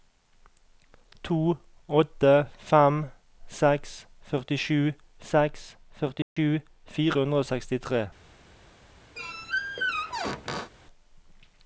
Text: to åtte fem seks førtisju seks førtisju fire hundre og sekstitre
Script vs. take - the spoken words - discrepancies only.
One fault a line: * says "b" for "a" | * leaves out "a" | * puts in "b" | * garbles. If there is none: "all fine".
all fine